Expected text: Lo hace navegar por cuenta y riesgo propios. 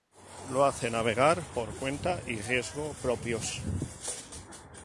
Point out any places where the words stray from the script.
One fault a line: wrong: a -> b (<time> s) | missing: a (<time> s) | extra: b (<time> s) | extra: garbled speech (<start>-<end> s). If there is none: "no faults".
no faults